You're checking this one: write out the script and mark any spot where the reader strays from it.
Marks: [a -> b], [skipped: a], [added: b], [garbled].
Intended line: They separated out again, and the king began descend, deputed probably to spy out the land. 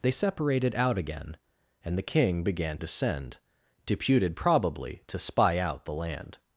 They separated out again, and the king began descend, deputed probably to spy out the land.